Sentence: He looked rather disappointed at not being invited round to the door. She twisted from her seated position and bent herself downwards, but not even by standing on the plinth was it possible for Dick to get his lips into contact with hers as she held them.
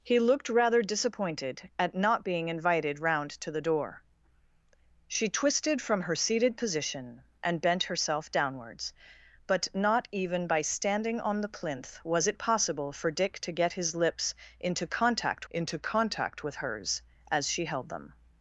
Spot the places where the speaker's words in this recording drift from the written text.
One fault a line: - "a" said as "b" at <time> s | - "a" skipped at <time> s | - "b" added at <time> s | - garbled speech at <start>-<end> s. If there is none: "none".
- "into contact" added at 15.5 s